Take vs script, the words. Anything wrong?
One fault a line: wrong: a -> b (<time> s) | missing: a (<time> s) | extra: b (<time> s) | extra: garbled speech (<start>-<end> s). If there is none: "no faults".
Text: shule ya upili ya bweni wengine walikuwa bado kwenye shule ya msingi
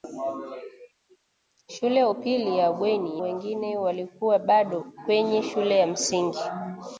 no faults